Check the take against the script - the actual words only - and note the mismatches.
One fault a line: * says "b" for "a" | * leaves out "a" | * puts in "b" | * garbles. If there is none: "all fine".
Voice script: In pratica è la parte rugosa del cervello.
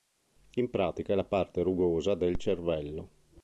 all fine